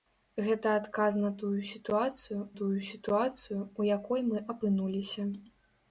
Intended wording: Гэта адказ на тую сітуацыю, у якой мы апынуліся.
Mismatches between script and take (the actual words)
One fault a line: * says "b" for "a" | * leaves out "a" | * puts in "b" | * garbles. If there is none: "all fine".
* puts in "тую сітуацыю"